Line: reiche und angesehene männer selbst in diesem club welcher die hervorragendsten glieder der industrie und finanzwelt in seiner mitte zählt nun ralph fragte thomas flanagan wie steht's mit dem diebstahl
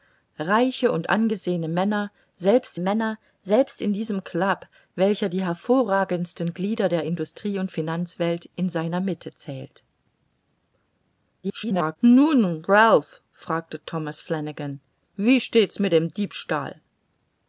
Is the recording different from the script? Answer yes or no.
yes